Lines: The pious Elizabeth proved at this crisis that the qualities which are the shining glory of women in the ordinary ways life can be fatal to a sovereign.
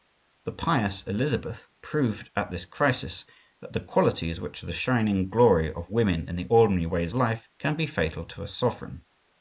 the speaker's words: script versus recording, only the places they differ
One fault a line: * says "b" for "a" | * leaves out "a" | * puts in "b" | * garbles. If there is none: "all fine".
all fine